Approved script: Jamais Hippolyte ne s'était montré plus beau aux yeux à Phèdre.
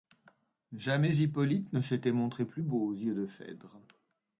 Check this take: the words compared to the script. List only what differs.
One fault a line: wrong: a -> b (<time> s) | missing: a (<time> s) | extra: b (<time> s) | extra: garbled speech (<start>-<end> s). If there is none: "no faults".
wrong: à -> de (3.1 s)